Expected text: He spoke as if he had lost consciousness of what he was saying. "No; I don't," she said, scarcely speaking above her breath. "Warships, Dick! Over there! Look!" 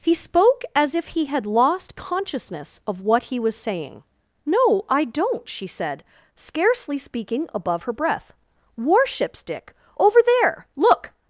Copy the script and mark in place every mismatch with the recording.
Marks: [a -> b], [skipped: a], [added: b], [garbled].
He spoke as if he had lost consciousness of what he was saying. "No; I don't," she said, scarcely speaking above her breath. "Warships, Dick! Over there! Look!"